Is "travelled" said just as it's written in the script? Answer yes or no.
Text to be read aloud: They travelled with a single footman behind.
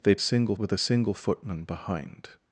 no